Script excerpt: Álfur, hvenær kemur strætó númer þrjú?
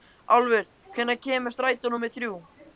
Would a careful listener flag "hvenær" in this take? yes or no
no